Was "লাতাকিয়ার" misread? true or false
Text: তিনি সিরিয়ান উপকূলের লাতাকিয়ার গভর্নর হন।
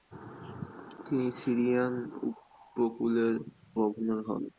true